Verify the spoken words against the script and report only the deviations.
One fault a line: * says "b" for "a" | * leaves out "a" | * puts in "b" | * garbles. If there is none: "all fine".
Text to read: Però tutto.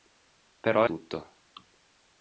all fine